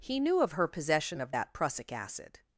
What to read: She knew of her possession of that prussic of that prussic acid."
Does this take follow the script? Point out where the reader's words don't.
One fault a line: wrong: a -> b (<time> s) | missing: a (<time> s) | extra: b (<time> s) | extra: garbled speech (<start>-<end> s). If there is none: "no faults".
wrong: She -> He (0.0 s)
missing: of that prussic (1.9 s)